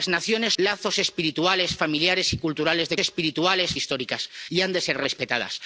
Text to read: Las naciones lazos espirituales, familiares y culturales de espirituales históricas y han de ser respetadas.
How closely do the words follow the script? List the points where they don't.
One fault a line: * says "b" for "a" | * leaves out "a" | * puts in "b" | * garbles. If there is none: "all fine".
all fine